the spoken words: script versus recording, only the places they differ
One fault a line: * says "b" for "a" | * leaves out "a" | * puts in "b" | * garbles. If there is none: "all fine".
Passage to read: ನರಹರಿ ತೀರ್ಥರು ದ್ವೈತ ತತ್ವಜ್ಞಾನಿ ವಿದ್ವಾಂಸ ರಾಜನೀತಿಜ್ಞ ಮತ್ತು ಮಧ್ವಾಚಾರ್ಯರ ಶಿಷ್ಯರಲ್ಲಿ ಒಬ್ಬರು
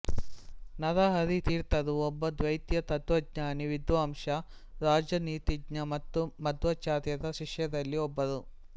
* puts in "ಒಬ್ಬ"